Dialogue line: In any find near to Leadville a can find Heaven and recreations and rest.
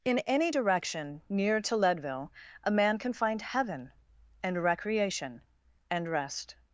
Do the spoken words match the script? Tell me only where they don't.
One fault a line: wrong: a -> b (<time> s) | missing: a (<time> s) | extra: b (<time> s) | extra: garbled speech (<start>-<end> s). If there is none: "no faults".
wrong: find -> direction (0.5 s)
extra: man (2.7 s)
wrong: recreations -> recreation (4.6 s)